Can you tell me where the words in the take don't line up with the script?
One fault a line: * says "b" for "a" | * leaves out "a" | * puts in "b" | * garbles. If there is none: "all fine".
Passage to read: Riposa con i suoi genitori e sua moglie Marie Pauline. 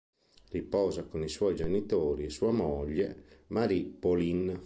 all fine